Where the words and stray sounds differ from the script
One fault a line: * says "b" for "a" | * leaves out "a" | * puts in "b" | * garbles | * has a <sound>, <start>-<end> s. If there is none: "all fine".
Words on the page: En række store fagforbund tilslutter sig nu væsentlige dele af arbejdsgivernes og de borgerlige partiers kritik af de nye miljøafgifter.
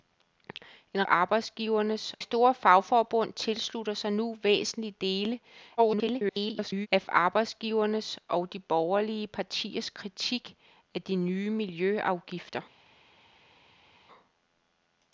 * says "arbejdsgivernes" for "række"
* garbles